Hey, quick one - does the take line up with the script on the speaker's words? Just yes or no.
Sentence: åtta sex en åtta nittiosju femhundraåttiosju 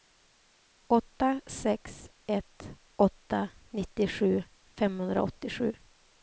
no